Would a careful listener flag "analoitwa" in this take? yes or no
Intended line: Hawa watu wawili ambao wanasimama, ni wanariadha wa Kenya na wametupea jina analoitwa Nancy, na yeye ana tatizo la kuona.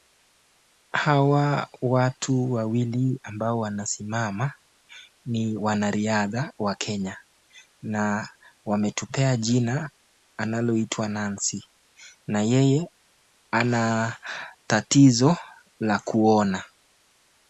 no